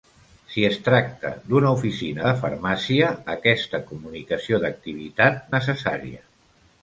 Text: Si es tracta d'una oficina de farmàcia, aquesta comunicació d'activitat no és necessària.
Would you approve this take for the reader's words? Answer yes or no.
no